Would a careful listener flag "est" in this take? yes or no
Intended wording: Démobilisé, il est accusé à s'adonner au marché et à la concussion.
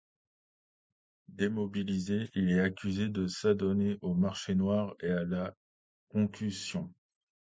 no